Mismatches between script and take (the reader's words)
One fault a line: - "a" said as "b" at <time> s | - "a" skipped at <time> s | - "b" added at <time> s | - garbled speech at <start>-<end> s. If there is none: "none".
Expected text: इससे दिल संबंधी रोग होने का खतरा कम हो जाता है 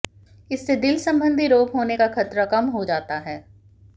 none